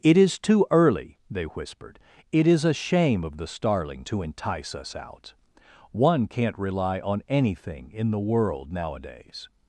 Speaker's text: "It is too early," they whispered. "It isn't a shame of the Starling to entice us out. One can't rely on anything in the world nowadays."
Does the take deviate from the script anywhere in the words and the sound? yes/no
yes